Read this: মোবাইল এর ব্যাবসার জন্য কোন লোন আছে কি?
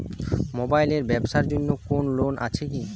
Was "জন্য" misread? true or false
false